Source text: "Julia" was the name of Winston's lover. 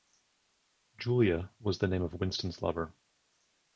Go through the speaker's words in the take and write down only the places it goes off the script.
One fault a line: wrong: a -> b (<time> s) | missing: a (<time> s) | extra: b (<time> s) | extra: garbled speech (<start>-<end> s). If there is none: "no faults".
no faults